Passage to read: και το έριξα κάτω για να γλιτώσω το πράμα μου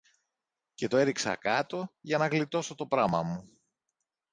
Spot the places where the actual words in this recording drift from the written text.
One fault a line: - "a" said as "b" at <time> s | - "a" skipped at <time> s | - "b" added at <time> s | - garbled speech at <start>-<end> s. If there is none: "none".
none